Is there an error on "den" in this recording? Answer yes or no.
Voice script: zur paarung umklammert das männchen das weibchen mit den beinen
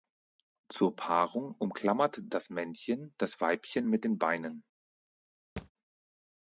no